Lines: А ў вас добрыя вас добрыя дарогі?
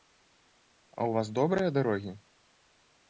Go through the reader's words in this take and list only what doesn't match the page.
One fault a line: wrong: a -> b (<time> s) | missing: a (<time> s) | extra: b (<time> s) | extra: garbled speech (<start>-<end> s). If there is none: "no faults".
missing: вас добрыя (1.7 s)